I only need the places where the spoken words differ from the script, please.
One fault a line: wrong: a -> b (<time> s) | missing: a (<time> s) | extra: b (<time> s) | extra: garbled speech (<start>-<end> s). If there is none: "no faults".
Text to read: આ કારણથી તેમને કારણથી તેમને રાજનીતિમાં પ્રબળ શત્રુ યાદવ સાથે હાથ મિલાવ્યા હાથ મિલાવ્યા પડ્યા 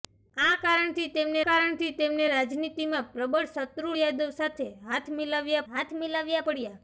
no faults